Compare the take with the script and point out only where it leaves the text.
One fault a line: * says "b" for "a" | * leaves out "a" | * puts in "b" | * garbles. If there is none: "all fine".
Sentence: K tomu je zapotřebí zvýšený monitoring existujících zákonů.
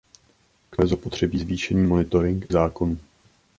* leaves out "tomu"
* leaves out "existujících"